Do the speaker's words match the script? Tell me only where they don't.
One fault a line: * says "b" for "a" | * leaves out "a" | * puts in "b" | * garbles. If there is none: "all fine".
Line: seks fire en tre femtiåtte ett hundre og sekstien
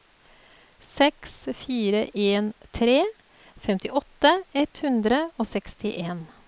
all fine